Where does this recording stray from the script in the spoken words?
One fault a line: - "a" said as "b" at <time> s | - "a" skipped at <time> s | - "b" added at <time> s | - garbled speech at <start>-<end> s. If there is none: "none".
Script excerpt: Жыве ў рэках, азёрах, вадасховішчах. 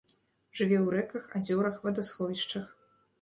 none